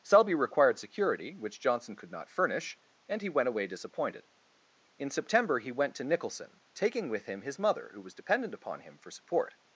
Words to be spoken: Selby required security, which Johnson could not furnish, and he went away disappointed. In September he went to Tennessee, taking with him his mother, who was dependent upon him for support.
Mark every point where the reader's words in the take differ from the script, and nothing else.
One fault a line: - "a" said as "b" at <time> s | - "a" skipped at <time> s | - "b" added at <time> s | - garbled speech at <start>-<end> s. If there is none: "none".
- "Tennessee" said as "Nicholson" at 6.0 s